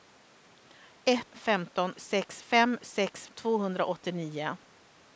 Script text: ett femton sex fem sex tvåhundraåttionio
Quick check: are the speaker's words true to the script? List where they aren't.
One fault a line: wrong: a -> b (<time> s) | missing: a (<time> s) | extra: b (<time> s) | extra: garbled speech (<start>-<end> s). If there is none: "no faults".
no faults